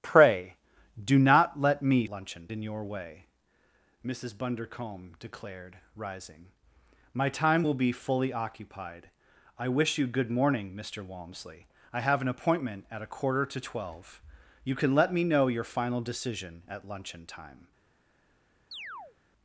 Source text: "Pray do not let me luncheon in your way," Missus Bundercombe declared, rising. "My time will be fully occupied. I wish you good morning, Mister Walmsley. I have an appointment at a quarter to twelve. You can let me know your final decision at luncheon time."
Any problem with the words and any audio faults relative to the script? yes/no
yes